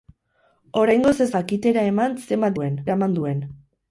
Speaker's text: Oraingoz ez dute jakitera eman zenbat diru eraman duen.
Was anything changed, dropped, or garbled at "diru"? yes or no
yes